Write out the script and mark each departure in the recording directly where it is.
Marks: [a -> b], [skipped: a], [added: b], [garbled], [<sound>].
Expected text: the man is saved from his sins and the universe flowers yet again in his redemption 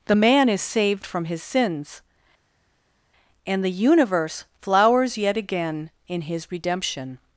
the man is saved from his sins and the universe flowers yet again in his redemption